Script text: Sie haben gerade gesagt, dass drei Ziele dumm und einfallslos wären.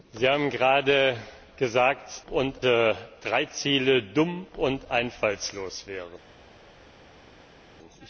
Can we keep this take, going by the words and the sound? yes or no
no